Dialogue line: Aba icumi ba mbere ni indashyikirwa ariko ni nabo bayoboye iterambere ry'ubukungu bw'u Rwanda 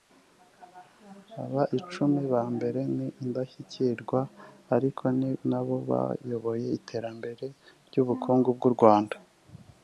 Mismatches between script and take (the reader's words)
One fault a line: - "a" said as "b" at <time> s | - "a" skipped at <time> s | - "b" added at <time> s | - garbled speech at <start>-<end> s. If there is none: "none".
none